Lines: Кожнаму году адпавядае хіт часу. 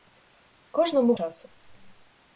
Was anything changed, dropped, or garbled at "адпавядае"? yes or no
yes